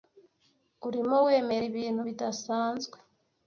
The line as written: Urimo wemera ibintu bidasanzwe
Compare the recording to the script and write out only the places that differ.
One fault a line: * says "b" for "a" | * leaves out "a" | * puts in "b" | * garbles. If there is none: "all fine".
all fine